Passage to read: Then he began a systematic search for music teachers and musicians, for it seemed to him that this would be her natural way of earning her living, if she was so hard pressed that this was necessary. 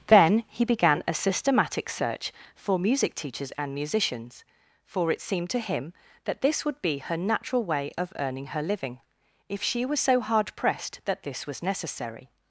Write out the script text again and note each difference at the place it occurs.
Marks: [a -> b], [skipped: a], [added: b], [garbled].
Then he began a systematic search for music teachers and musicians, for it seemed to him that this would be her natural way of earning her living, if she was so hard pressed that this was necessary.